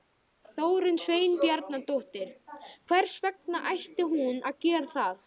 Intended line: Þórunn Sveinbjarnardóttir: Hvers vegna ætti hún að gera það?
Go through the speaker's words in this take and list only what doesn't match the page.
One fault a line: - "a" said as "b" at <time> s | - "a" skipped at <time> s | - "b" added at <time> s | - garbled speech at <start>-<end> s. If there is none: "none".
none